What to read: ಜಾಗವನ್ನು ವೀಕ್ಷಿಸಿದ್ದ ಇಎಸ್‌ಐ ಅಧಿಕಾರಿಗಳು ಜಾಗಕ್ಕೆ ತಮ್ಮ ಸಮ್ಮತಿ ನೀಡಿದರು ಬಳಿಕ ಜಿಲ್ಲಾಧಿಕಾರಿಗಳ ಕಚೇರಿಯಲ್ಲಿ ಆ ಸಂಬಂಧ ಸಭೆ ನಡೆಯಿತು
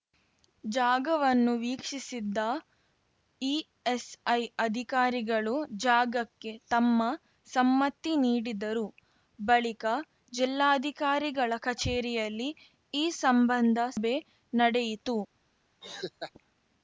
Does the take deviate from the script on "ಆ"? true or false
true